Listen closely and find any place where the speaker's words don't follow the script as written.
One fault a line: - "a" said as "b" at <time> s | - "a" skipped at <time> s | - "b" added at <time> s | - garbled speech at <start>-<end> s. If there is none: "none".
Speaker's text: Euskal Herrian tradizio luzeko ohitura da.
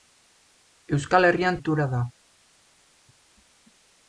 - "tradizio luzeko" skipped at 1.6 s